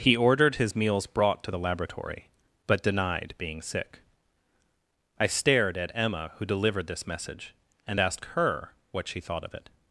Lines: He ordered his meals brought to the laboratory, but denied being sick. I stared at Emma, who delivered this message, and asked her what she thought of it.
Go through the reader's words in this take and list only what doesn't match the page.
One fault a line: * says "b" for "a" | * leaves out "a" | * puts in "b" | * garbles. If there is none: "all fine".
all fine